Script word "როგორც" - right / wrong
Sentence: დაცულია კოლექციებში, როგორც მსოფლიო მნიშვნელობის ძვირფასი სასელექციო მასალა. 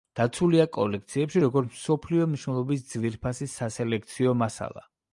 right